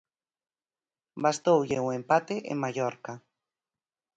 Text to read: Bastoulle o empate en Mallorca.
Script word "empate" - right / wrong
right